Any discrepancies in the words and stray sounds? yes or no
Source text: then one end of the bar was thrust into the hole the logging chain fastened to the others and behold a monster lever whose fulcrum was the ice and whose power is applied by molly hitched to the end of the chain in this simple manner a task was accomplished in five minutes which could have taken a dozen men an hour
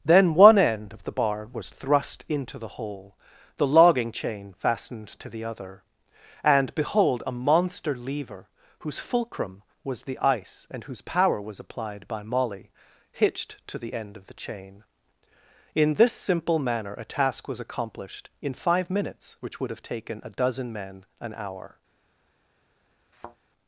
yes